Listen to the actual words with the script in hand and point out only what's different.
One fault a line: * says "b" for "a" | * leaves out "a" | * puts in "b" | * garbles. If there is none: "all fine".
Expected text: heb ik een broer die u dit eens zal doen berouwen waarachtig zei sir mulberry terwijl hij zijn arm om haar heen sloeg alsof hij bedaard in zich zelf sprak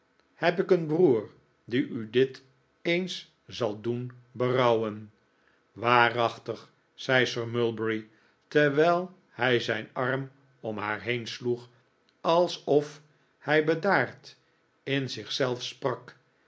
all fine